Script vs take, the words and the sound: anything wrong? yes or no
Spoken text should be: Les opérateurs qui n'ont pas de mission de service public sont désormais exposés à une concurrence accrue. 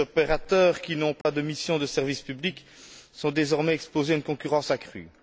yes